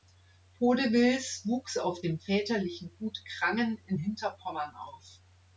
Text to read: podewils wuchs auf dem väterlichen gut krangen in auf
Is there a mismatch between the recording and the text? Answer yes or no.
yes